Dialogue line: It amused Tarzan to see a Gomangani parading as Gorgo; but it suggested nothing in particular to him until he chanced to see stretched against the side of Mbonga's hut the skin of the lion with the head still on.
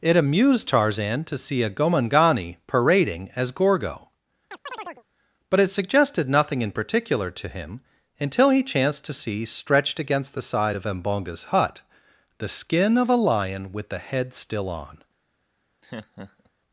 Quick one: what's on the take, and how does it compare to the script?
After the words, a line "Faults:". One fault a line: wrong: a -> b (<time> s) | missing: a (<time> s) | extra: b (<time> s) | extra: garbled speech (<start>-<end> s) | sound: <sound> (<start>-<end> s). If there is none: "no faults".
It amused Tarzan to see a Gomangani parading as Gorgo; but it suggested nothing in particular to him until he chanced to see stretched against the side of Mbonga's hut the skin of a lion with the head still on.
Faults:
sound: chirp (4.5-5.0 s)
wrong: the -> a (13.1 s)
sound: laugh (15.8-16.5 s)